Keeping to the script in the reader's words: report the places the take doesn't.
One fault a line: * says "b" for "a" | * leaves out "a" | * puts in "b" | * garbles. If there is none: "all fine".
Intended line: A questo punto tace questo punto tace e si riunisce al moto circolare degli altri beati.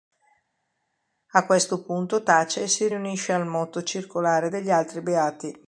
* leaves out "questo punto tace"